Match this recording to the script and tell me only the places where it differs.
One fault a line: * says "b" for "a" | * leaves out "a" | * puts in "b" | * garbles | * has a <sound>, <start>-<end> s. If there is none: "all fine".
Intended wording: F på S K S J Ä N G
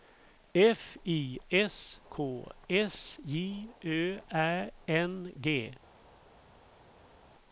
* says "I" for "på"
* puts in "Ö"